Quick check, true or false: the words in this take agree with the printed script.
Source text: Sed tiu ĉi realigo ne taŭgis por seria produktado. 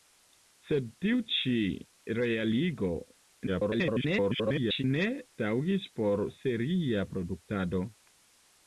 false